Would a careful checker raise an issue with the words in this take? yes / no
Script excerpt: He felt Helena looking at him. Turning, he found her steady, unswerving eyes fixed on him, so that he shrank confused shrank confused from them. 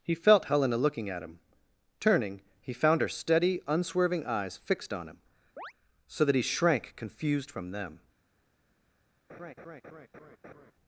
yes